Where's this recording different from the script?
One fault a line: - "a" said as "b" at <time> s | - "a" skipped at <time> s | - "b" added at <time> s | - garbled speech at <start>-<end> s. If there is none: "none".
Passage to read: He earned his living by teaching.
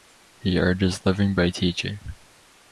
none